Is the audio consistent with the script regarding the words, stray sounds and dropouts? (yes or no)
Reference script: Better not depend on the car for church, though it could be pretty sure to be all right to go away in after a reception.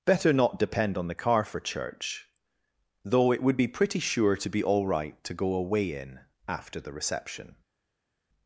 no